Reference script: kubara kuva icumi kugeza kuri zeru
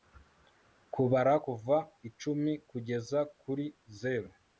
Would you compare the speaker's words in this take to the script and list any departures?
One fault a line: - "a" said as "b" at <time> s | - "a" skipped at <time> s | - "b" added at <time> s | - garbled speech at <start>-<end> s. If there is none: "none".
none